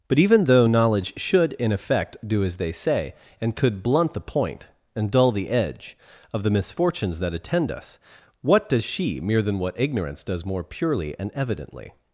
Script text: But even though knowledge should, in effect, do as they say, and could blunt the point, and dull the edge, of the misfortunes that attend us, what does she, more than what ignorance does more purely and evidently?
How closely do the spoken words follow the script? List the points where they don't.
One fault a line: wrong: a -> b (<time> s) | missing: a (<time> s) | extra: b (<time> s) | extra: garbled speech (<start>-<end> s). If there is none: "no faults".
wrong: more -> mere (9.2 s)